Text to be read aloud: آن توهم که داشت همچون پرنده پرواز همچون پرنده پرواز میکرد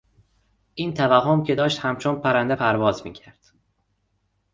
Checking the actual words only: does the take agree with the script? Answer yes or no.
no